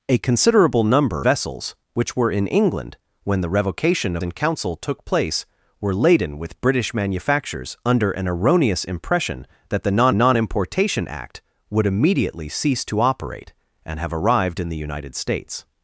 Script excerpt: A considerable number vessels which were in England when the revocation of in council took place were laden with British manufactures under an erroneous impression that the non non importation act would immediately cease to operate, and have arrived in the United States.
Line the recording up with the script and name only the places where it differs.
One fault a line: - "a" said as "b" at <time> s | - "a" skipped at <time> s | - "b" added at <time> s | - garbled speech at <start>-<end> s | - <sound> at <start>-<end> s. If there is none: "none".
none